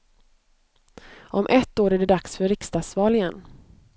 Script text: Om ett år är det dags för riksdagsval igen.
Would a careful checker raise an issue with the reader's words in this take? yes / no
no